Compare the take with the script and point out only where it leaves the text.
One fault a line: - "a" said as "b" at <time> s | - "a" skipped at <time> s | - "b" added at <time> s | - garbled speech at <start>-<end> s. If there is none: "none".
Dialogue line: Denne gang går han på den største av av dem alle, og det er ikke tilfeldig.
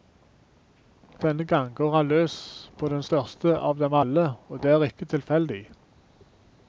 - "løs" added at 2.1 s
- "av" skipped at 3.8 s